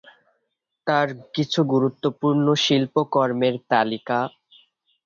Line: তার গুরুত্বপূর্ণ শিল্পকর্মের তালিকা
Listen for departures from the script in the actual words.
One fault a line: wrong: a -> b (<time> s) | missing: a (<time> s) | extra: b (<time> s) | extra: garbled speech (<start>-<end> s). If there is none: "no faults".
extra: কিছু (1.4 s)